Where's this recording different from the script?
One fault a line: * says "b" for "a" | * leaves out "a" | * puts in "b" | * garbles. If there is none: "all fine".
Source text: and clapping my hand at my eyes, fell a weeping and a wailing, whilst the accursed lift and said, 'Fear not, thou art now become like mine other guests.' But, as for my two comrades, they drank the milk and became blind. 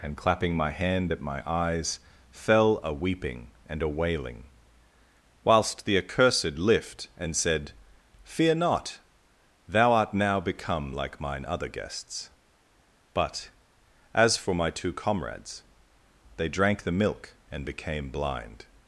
all fine